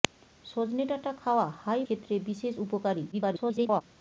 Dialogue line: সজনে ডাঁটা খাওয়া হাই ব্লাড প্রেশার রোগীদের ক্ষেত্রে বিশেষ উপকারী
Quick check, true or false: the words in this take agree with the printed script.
false